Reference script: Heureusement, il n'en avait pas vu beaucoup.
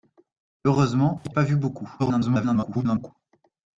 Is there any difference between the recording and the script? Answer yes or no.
yes